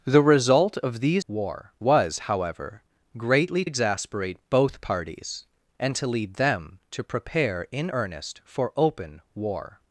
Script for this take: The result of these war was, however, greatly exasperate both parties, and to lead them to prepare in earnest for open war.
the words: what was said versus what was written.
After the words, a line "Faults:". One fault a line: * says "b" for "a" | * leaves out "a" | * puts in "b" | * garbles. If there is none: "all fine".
The result of these war was, however, greatly exasperate both parties, and to lead them to prepare in earnest for open war.
Faults:
all fine